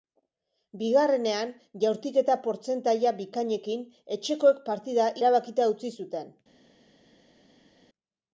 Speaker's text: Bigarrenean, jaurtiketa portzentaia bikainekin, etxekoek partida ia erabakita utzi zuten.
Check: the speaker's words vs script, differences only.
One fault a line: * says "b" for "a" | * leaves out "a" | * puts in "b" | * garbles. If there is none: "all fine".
* leaves out "ia"